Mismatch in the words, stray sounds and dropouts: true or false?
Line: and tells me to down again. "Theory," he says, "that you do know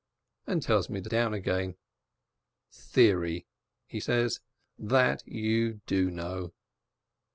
false